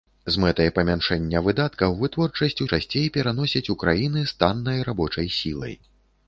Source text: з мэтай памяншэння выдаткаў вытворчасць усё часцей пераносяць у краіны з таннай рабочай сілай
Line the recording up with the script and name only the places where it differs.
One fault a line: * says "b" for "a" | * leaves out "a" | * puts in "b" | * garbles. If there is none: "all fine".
* leaves out "усё"